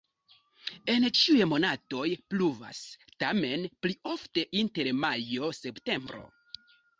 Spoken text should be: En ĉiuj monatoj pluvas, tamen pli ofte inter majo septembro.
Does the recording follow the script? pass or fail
pass